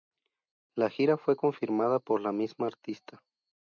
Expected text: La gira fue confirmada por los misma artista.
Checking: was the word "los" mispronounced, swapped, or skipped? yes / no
yes